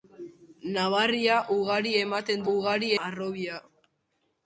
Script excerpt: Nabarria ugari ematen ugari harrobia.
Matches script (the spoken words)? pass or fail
pass